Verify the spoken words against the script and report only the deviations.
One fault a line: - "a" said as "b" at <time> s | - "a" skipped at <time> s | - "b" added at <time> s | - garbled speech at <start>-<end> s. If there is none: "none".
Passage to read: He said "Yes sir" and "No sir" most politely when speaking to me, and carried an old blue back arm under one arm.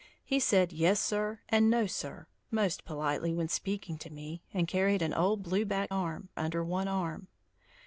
none